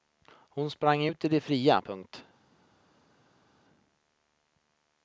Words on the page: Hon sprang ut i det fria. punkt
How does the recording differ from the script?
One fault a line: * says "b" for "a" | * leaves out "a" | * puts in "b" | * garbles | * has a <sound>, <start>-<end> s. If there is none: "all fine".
all fine